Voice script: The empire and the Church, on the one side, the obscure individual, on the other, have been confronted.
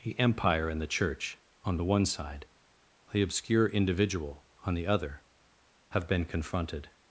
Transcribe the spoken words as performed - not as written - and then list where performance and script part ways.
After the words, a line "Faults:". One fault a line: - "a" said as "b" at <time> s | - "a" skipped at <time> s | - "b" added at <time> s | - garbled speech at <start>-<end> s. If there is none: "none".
The empire and the Church, on the one side, the obscure individual, on the other, have been confronted.
Faults:
none